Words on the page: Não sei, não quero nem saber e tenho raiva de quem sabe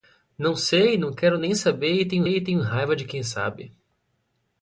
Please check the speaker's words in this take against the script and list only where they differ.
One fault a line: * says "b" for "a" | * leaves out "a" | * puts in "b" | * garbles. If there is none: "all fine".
* puts in "e tenho"